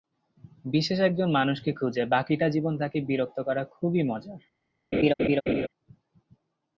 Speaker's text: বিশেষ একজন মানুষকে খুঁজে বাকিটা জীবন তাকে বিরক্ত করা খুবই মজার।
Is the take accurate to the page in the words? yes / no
yes